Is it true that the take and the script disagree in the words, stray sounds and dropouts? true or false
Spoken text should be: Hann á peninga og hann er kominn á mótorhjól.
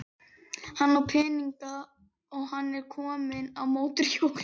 false